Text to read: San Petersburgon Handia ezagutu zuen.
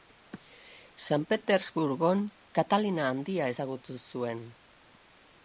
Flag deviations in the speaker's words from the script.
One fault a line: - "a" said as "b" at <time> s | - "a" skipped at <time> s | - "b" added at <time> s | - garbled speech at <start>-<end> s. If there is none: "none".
- "Katalina" added at 2.6 s